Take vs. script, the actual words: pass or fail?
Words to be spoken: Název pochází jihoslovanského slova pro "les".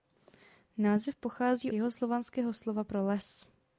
pass